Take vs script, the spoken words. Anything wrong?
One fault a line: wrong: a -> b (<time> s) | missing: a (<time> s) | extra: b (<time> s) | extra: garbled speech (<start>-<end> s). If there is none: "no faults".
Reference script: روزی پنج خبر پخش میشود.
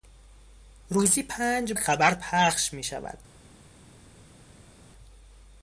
no faults